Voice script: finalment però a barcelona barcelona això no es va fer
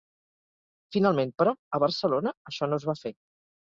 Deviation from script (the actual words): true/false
true